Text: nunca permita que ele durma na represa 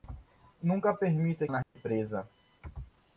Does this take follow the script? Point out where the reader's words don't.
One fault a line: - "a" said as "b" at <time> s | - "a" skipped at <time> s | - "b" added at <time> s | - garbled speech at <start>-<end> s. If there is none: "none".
- "que ele durma" skipped at 1.5 s